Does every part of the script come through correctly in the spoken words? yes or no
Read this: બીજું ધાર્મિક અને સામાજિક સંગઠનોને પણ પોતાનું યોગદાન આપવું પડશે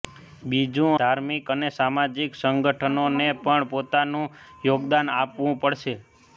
yes